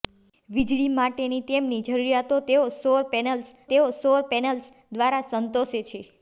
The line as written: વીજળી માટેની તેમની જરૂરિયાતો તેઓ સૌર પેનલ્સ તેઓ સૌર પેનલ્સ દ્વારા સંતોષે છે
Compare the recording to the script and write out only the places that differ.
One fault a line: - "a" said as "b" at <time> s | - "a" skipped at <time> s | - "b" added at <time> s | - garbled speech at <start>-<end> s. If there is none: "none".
none